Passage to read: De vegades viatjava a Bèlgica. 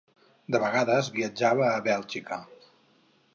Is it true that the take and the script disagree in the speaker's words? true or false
false